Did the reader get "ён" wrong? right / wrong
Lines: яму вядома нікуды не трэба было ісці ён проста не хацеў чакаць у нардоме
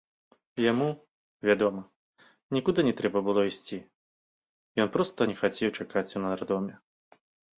right